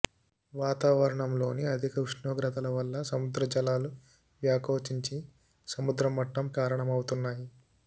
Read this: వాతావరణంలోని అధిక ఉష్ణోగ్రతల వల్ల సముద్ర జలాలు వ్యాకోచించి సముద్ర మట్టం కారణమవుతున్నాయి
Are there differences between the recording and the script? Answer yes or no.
no